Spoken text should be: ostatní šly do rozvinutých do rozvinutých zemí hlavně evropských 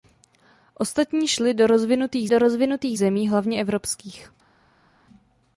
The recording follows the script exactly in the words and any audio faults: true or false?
true